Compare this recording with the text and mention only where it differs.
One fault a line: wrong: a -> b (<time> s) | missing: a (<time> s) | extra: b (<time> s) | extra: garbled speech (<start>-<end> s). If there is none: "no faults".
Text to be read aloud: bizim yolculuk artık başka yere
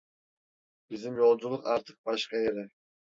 no faults